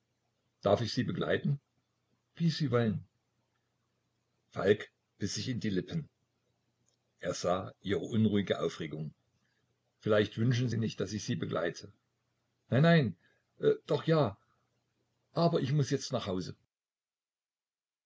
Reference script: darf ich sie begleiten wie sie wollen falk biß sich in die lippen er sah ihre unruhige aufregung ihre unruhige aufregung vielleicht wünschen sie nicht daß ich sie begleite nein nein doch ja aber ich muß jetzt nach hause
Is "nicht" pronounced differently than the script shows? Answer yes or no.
no